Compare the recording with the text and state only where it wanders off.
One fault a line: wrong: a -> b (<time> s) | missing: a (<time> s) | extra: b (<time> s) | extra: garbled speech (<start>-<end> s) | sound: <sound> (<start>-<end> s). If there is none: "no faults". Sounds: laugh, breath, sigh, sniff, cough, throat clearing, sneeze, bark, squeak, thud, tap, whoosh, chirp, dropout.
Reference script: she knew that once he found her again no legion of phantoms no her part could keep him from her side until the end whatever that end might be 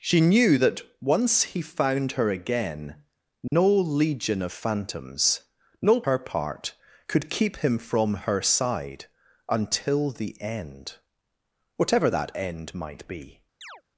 sound: dropout (3.5-3.5 s)
sound: chirp (13.6-13.8 s)